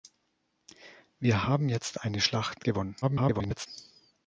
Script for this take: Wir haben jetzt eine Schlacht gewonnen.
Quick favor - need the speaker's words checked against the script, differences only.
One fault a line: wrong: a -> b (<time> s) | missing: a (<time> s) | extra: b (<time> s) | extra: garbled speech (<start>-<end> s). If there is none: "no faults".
extra: garbled speech (3.0-3.7 s)